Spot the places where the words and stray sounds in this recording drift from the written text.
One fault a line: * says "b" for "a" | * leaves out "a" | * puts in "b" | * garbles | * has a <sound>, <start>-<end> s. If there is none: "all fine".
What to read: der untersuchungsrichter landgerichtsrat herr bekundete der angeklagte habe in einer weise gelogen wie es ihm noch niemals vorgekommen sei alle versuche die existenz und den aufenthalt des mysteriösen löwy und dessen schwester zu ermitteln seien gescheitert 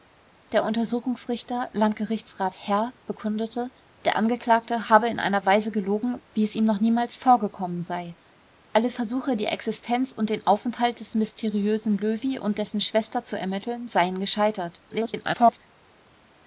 * garbles